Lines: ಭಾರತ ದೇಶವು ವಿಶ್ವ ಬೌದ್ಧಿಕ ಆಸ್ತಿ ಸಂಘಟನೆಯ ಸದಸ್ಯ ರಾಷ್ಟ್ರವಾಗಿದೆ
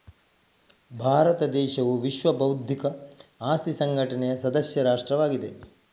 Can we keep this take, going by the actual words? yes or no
yes